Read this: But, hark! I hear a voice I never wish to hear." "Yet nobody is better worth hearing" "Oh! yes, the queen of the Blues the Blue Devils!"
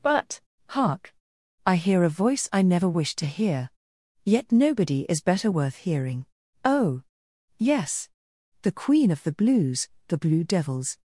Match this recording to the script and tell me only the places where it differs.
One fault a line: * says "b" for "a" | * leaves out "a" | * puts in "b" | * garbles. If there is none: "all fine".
all fine